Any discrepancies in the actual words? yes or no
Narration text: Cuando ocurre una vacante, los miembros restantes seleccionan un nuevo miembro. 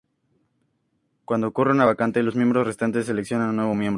no